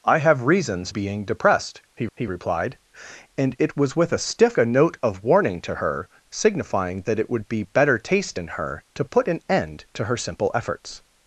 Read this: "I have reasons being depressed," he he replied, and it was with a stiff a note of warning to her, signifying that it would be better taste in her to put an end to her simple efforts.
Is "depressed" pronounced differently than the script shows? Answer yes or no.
no